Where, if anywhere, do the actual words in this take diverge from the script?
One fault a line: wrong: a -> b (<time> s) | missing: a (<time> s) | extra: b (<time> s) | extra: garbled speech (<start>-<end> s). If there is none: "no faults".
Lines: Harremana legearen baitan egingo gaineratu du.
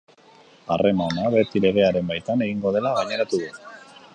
extra: beti (1.4 s)
extra: dela (2.8 s)